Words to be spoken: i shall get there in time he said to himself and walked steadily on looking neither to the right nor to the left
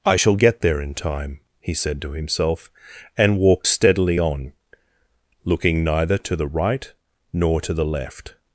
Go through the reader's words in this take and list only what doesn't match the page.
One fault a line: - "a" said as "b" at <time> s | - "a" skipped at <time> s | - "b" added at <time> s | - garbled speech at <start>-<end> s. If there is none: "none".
none